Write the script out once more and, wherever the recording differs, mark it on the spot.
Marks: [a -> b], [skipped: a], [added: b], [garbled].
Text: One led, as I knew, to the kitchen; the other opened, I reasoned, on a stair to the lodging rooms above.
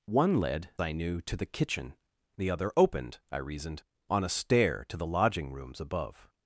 One led, [skipped: as] I knew, to the kitchen; the other opened, I reasoned, on a stair to the lodging rooms above.